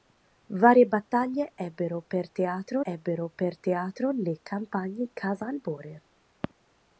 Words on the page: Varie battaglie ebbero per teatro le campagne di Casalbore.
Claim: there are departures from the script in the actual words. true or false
true